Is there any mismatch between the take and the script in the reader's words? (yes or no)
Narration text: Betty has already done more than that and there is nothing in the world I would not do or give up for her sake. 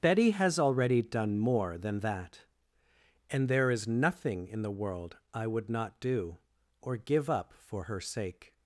no